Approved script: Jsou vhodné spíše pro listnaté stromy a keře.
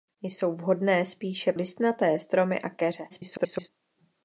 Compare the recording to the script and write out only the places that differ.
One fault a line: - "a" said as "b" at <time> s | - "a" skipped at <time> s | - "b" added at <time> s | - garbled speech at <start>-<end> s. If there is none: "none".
- "pro" skipped at 1.5 s
- garbled speech at 3.1-3.7 s